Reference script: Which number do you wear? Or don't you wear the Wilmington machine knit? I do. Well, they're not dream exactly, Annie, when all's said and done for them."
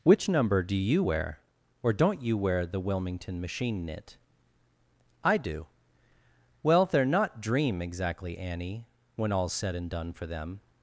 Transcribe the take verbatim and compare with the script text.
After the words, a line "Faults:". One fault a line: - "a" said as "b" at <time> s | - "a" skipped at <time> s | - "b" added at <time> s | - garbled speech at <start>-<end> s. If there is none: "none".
Which number do you wear? Or don't you wear the Wilmington machine knit? I do. Well, they're not dream exactly, Annie, when all's said and done for them."
Faults:
none